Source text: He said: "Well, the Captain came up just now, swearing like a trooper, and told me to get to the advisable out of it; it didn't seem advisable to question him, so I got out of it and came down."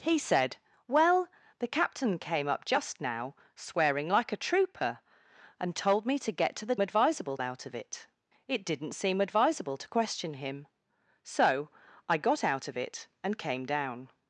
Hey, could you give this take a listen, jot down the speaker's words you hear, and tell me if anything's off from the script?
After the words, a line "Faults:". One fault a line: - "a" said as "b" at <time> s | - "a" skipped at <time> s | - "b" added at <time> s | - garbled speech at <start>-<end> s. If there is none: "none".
He said: "Well, the Captain came up just now, swearing like a trooper, and told me to get to the advisable out of it; it didn't seem advisable to question him, so I got out of it and came down."
Faults:
none